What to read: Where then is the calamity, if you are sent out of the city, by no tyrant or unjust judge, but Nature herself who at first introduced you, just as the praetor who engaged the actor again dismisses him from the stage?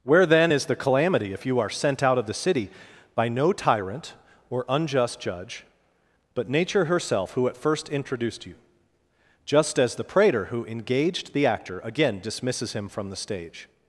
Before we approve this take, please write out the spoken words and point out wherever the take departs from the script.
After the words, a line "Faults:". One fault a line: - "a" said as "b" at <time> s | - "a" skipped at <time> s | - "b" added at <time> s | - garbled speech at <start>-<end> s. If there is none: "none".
Where then is the calamity, if you are sent out of the city, by no tyrant or unjust judge, but Nature herself who at first introduced you, just as the praetor who engaged the actor again dismisses him from the stage?
Faults:
none